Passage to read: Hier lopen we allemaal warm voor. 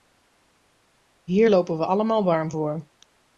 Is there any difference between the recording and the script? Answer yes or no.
no